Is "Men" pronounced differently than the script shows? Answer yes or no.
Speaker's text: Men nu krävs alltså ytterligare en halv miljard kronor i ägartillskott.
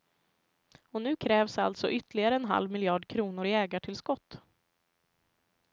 yes